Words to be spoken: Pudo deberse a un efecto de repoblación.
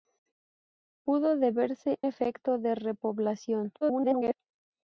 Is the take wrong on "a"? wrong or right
wrong